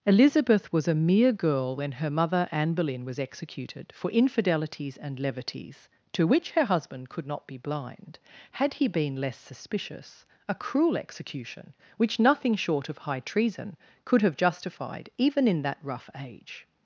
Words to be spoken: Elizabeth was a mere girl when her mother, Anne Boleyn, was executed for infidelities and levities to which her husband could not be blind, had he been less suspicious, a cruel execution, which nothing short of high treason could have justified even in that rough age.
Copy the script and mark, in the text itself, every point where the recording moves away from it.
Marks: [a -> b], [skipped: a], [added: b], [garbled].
Elizabeth was a mere girl when her mother, Anne Boleyn, was executed for infidelities and levities to which her husband could not be blind, had he been less suspicious, a cruel execution, which nothing short of high treason could have justified even in that rough age.